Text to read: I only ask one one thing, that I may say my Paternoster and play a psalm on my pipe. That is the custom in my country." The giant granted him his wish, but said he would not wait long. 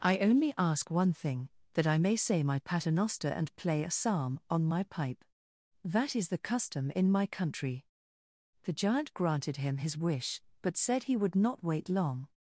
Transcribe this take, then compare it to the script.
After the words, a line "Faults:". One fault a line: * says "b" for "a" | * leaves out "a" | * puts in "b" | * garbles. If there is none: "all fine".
I only ask one thing, that I may say my Paternoster and play a psalm on my pipe. That is the custom in my country." The giant granted him his wish, but said he would not wait long.
Faults:
* leaves out "one"